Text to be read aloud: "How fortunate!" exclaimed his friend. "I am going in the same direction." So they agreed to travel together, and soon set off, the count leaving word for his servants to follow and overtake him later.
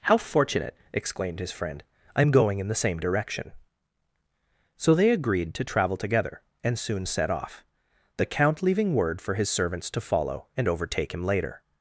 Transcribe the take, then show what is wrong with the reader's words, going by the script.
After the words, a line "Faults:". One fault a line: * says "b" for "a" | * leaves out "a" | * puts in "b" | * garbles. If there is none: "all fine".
"How fortunate!" exclaimed his friend. "I am going in the same direction." So they agreed to travel together, and soon set off, the count leaving word for his servants to follow and overtake him later.
Faults:
all fine